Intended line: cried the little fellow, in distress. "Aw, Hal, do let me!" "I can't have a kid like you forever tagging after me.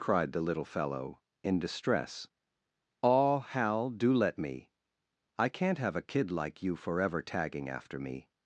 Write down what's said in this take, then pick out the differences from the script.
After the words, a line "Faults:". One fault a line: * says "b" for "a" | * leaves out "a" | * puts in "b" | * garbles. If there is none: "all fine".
cried the little fellow, in distress. "Aw, Hal, do let me!" "I can't have a kid like you forever tagging after me.
Faults:
all fine